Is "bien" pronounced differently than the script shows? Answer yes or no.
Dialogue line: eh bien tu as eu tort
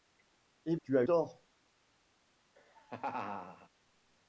yes